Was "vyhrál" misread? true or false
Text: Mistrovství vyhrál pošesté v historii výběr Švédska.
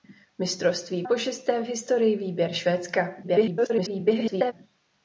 true